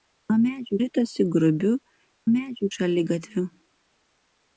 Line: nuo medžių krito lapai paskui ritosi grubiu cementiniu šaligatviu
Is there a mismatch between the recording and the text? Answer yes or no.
yes